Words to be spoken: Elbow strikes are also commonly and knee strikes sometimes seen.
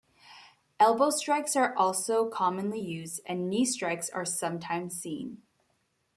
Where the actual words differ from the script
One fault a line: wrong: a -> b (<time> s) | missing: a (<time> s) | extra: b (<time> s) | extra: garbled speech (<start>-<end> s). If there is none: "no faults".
extra: used (2.8 s)
extra: are (4.1 s)